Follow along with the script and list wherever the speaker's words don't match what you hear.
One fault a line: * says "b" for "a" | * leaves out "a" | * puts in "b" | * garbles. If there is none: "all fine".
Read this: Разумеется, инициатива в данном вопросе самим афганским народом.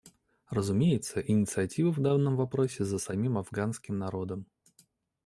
* puts in "за"